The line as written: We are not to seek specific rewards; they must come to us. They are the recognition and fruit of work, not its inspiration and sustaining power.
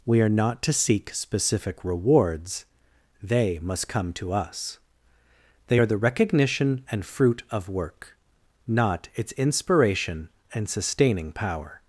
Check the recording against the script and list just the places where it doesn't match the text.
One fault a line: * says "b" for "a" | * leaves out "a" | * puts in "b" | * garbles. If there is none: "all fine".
all fine